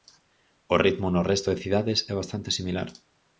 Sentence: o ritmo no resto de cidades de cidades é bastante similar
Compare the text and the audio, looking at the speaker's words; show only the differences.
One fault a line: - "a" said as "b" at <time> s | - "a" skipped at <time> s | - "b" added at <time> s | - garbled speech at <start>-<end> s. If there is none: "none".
- "de cidades" skipped at 2.0 s